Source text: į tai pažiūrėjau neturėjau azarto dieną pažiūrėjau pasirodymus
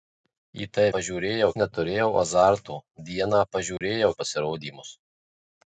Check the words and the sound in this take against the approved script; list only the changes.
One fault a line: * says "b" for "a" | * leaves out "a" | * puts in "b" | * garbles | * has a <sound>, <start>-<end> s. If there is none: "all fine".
* has a dropout, 3.8-3.8 s